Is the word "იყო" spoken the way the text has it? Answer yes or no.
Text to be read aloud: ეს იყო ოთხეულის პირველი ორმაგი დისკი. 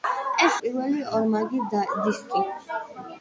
no